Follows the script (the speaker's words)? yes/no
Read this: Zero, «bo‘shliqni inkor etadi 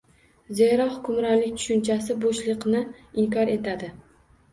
no